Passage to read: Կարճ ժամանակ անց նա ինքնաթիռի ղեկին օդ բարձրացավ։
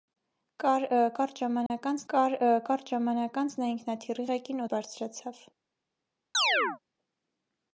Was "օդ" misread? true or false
true